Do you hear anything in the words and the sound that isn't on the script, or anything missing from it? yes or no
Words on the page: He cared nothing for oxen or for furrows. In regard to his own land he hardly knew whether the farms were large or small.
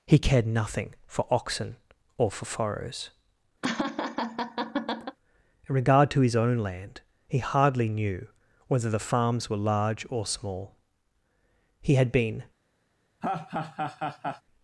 yes